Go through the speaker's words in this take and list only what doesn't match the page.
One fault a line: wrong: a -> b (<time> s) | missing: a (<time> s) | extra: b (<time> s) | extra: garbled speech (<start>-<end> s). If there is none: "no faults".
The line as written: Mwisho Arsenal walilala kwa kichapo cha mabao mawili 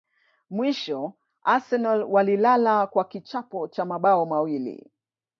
no faults